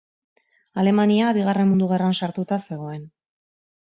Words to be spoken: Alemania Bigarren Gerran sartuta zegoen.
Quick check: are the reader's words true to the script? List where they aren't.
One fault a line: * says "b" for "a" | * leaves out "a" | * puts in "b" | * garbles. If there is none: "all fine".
* puts in "Mundu"